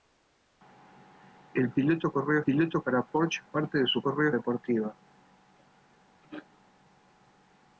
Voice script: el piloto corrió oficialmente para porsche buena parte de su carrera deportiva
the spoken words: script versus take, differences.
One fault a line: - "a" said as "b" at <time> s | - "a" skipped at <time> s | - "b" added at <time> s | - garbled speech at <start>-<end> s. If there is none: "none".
- "oficialmente" said as "piloto" at 2.4 s
- "buena" skipped at 3.4 s
- "carrera" said as "corrió" at 4.0 s